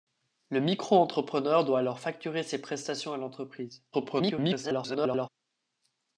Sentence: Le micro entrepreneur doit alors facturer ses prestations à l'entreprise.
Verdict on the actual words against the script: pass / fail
fail